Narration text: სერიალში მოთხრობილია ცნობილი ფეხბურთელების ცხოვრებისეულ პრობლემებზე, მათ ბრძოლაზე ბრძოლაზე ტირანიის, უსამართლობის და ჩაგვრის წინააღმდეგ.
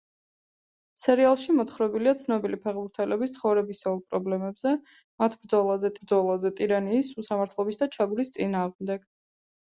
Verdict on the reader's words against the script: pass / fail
pass